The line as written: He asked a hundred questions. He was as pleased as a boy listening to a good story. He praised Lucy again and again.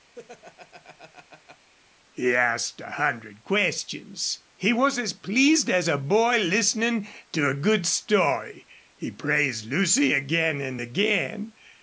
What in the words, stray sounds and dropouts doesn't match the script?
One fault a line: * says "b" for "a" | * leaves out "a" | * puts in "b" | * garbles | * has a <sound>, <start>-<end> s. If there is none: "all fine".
* has a laugh, 0.1-1.7 s